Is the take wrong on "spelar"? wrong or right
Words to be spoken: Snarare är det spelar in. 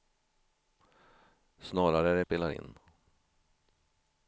right